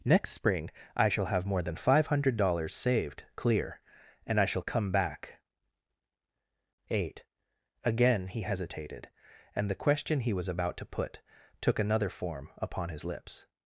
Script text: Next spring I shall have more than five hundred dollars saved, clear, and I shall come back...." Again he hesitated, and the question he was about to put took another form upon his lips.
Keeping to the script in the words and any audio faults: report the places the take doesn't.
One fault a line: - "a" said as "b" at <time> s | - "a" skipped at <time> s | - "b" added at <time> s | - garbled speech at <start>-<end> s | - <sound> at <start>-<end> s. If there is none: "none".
- "eight" added at 6.9 s